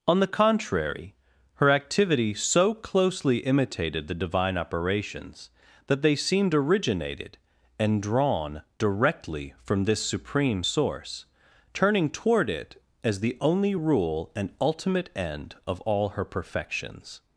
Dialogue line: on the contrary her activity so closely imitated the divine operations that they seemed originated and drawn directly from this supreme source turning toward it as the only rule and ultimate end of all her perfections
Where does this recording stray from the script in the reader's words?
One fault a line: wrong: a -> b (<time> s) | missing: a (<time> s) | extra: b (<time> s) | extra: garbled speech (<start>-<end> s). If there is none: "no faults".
no faults